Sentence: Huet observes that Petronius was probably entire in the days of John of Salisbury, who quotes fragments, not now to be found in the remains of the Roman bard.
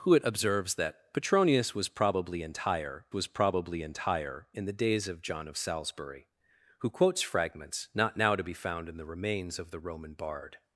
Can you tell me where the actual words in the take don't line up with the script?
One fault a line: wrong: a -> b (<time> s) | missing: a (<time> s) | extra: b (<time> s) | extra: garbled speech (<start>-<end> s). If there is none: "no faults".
extra: was probably entire (3.1 s)